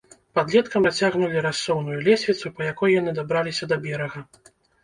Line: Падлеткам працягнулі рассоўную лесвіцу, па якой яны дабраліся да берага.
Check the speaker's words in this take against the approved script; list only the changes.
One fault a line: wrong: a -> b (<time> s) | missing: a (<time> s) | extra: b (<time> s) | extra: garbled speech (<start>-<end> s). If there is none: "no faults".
no faults